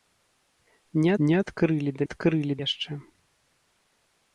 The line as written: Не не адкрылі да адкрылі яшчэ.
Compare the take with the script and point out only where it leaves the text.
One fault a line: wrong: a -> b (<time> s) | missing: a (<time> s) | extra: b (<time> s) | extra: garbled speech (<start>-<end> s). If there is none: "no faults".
no faults